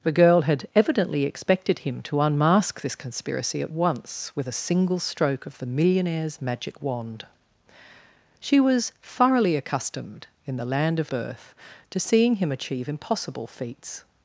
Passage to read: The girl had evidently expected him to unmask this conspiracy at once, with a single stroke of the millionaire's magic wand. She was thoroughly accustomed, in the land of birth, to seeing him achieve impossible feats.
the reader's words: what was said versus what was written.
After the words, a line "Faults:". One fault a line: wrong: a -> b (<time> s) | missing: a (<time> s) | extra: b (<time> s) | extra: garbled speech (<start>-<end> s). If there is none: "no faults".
The girl had evidently expected him to unmask this conspiracy at once, with a single stroke of the millionaire's magic wand. She was thoroughly accustomed, in the land of birth, to seeing him achieve impossible feats.
Faults:
no faults